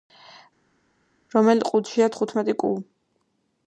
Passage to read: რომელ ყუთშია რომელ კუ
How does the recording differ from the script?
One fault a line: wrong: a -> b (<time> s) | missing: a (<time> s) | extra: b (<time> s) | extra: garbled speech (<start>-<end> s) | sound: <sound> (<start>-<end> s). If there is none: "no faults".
wrong: რომელ -> თხუთმეტი (2.2 s)